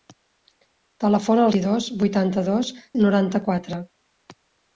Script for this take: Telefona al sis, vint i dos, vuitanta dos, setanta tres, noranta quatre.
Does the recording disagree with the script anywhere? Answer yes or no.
yes